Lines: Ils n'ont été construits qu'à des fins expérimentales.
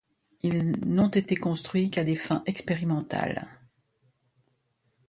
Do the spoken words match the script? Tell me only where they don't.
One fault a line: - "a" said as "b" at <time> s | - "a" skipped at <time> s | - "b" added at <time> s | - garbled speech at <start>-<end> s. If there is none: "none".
none